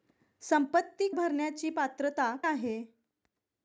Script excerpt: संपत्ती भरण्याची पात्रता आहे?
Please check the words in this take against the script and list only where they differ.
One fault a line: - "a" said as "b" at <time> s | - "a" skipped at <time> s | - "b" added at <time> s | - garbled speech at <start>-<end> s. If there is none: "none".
none